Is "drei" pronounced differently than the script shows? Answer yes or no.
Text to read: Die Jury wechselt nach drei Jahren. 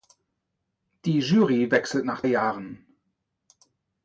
yes